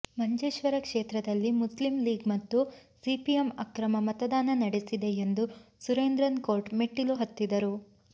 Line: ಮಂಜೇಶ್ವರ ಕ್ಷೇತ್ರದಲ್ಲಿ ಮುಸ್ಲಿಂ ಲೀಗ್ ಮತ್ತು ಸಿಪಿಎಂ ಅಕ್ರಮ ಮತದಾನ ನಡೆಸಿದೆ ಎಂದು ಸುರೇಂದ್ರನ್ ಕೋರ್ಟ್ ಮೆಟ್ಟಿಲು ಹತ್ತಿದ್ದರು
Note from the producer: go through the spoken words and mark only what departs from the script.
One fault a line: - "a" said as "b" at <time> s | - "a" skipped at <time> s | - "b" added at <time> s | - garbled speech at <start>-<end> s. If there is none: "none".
none